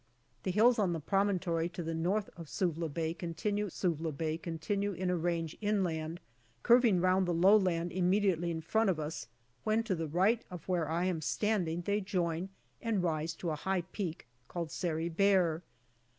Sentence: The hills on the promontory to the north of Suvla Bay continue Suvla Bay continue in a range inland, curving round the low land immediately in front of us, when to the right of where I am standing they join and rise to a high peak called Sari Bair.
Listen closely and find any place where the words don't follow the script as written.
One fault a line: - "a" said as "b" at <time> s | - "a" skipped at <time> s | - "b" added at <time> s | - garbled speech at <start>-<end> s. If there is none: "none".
none